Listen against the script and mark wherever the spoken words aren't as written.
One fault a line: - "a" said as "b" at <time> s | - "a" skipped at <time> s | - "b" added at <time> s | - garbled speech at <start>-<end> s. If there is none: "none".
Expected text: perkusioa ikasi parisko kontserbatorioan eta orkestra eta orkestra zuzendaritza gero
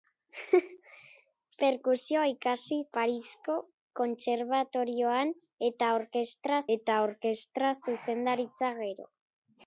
none